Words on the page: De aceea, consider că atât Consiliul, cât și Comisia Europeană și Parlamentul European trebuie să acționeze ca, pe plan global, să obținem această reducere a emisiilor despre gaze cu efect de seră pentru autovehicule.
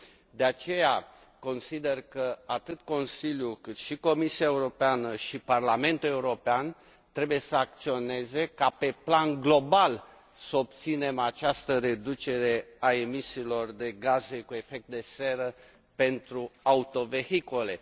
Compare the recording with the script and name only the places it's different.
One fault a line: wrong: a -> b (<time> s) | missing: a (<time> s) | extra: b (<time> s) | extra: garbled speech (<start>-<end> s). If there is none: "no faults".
wrong: despre -> de (13.7 s)